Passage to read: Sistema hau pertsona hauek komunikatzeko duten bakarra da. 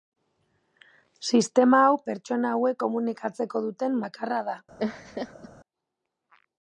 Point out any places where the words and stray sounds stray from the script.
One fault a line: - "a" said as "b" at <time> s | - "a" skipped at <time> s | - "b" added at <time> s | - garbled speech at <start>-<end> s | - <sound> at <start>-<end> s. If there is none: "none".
- laugh at 4.8-5.5 s